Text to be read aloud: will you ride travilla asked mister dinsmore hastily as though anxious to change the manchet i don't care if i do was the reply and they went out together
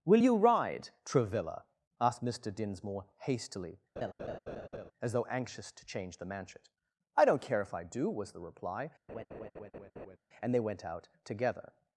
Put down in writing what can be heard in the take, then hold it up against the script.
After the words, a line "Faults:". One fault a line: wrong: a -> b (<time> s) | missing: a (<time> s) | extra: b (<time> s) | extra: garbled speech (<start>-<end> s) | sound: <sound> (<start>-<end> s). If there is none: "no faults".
will you ride travilla asked mister dinsmore hastily as though anxious to change the manchet i don't care if i do was the reply and they went out together
Faults:
sound: laugh (4.0-4.9 s)
sound: laugh (9.1-10.2 s)